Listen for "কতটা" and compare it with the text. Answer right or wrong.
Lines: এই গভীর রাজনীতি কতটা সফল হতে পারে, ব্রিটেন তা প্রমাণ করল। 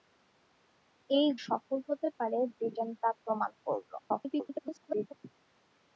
wrong